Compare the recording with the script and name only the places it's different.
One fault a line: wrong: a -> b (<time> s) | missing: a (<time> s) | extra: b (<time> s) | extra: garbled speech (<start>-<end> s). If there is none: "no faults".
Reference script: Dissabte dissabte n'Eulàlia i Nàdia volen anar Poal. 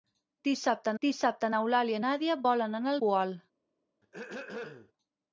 no faults